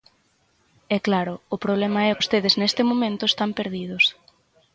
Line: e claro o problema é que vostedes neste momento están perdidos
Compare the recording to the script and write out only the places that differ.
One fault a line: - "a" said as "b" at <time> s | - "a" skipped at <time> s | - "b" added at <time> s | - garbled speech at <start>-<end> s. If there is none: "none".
- "que" skipped at 2.2 s